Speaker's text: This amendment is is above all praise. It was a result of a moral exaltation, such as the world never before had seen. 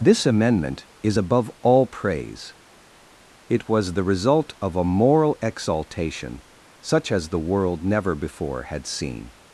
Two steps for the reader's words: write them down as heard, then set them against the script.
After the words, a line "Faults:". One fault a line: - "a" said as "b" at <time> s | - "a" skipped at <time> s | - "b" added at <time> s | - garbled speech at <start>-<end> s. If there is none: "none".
This amendment is above all praise. It was the result of a moral exaltation, such as the world never before had seen.
Faults:
- "is" skipped at 1.2 s
- "a" said as "the" at 3.9 s